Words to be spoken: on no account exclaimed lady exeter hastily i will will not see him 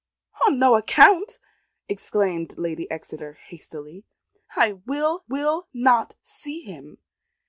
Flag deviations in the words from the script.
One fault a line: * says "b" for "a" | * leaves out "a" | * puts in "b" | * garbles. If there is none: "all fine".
all fine